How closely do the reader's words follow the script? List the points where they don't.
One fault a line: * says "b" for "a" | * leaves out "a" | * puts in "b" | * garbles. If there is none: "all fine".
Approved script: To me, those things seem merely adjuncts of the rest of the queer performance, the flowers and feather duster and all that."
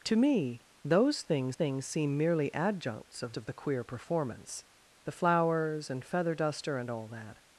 * puts in "things"
* leaves out "the rest"